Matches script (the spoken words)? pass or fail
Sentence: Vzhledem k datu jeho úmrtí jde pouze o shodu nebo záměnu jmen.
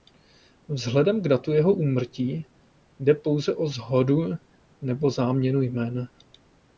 pass